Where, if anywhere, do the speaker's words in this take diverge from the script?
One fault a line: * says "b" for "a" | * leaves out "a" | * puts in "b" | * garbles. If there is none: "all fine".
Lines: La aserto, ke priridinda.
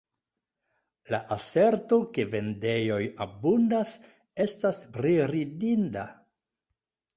* puts in "vendejoj abundas estas"